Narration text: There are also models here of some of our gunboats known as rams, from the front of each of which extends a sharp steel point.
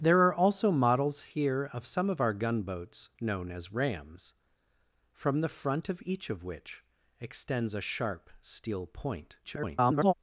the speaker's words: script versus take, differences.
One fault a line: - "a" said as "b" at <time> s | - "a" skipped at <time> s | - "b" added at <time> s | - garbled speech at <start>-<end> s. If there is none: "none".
- garbled speech at 9.4-10.1 s